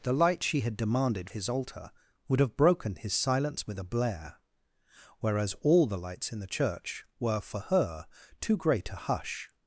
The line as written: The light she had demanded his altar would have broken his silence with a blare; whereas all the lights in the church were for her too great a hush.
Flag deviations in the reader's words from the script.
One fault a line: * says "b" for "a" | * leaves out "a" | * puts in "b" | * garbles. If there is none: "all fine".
all fine